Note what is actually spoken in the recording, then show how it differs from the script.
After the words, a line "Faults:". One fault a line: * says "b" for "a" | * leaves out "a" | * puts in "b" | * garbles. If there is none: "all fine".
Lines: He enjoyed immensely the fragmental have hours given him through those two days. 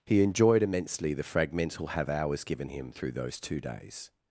He enjoyed immensely the fragmental have hours given him through those two days.
Faults:
all fine